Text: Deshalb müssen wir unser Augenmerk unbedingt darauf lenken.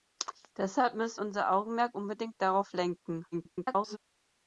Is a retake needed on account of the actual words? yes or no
yes